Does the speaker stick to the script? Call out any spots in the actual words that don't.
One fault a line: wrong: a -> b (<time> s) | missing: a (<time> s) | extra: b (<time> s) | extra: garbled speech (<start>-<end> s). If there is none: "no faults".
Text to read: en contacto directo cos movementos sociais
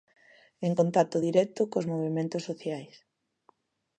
no faults